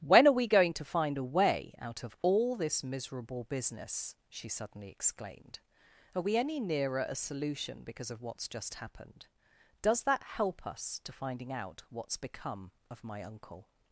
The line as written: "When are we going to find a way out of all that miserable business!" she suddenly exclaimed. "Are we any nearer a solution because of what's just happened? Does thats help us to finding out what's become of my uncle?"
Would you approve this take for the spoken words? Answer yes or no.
no